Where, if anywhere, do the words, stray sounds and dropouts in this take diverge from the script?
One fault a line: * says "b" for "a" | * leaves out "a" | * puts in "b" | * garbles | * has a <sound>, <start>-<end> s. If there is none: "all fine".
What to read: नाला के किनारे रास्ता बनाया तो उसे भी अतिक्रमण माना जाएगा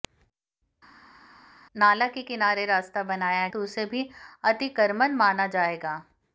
all fine